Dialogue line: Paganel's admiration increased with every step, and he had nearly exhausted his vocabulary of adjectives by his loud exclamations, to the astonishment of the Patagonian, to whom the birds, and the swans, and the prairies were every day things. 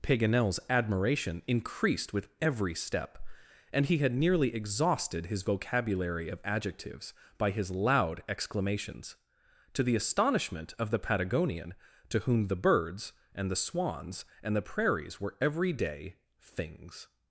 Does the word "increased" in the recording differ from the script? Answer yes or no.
no